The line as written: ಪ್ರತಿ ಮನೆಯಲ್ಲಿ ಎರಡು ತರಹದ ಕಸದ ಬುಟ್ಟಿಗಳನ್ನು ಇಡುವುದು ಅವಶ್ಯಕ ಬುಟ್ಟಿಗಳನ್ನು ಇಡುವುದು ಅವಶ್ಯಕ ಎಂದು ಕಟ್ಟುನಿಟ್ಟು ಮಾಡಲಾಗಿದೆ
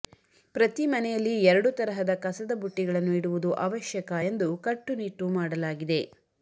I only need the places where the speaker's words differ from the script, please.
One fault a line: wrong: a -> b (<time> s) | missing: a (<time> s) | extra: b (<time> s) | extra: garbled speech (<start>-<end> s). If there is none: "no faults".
missing: ಬುಟ್ಟಿಗಳನ್ನು ಇಡುವುದು ಅವಶ್ಯಕ (4.1 s)